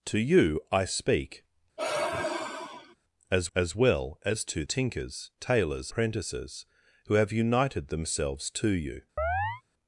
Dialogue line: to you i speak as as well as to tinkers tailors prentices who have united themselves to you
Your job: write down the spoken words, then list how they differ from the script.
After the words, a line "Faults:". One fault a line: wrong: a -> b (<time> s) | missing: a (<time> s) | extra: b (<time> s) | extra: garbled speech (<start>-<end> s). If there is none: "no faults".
to you i speak as as well as to tinkers tailors prentices who have united themselves to you
Faults:
no faults